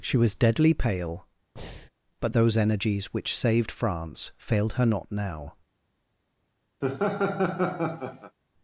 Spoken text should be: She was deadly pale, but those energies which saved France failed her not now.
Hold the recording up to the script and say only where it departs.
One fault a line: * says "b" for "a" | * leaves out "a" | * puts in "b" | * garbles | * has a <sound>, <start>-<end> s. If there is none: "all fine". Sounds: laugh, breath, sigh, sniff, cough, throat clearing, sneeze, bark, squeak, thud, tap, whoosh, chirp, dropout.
* has a breath, 1.6-1.9 s
* has a laugh, 6.8-8.4 s